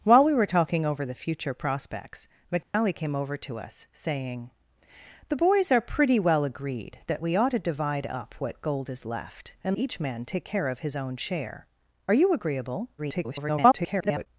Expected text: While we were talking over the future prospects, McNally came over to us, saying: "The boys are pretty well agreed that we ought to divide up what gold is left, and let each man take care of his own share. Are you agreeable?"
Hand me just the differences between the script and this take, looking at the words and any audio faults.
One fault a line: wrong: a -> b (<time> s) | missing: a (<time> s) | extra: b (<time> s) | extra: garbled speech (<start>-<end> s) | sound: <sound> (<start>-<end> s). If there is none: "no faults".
sound: dropout (2.6-2.7 s)
missing: let (9.8 s)
extra: garbled speech (13.0-14.3 s)